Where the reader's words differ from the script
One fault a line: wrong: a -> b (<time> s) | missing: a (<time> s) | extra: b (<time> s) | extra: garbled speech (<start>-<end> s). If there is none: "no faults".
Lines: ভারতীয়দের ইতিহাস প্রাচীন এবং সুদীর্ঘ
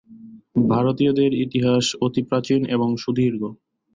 extra: অতি (2.0 s)